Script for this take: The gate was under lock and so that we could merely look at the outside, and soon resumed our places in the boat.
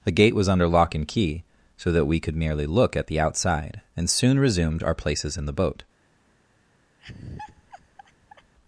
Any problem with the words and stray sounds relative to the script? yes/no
yes